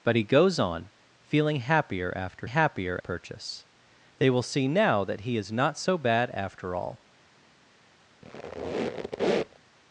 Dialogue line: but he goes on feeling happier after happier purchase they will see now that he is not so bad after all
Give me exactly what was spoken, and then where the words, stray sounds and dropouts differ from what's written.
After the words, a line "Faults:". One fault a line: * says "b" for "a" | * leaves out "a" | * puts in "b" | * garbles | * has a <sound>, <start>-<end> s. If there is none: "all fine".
but he goes on feeling happier after happier purchase they will see now that he is not so bad after all
Faults:
* has a squeak, 8.2-9.6 s